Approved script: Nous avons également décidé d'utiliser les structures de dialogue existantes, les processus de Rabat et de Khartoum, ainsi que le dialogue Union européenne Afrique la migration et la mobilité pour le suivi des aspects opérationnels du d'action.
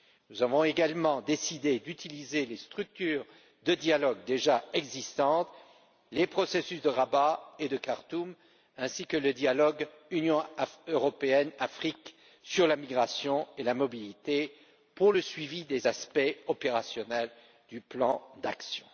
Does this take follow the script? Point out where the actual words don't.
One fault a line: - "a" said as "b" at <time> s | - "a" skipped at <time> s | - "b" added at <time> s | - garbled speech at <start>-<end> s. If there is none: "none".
- "déjà" added at 4.2 s
- "sur" added at 12.4 s
- "plan" added at 17.8 s